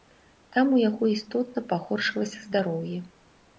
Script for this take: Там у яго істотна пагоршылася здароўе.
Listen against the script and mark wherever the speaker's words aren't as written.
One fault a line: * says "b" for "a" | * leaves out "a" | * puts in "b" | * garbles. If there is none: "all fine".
all fine